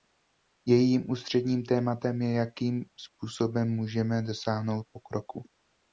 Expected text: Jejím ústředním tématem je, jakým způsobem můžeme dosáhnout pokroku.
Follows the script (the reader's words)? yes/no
yes